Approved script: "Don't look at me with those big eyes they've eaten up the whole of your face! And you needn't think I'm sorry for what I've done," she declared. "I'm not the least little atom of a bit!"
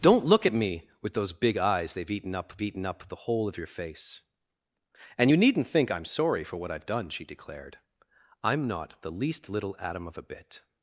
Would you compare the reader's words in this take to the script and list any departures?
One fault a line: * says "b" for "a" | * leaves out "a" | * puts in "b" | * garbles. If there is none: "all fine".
* puts in "eaten up"